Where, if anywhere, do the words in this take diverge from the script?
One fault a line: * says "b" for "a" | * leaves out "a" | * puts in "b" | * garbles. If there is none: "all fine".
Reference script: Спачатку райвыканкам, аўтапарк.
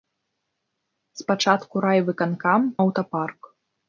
all fine